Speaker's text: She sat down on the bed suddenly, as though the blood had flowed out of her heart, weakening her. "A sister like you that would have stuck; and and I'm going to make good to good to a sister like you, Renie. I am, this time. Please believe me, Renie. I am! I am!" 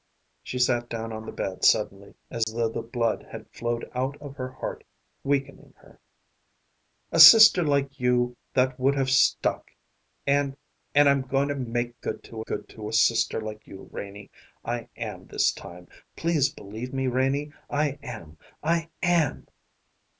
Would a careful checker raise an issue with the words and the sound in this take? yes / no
yes